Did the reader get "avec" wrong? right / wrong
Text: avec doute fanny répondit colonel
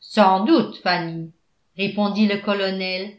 wrong